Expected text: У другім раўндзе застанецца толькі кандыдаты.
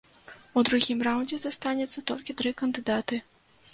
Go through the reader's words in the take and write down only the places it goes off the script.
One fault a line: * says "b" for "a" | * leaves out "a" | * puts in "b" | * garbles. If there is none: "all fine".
* puts in "тры"